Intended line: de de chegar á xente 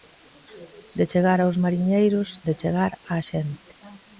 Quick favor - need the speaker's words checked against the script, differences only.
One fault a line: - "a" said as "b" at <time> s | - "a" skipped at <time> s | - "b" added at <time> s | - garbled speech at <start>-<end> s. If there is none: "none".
- "chegar aos mariñeiros" added at 1.1 s